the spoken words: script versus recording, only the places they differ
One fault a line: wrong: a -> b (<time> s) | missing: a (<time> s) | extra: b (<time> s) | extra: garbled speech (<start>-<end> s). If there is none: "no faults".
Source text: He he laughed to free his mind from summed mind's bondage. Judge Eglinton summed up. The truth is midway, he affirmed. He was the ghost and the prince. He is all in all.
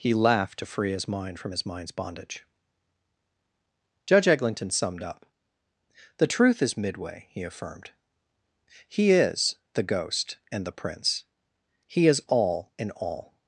missing: he (0.1 s)
wrong: summed -> his (1.5 s)
wrong: was -> is (9.1 s)